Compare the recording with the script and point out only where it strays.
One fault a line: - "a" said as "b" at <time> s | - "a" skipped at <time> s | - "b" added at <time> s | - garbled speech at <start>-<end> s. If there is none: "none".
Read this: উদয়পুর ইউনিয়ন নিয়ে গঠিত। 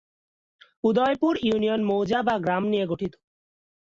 - "মৌজা/গ্রাম" added at 1.8 s